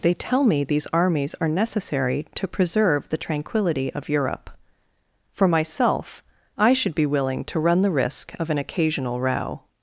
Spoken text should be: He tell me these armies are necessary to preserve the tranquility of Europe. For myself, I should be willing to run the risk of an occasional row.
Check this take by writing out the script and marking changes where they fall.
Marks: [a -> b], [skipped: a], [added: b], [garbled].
[He -> They] tell me these armies are necessary to preserve the tranquility of Europe. For myself, I should be willing to run the risk of an occasional row.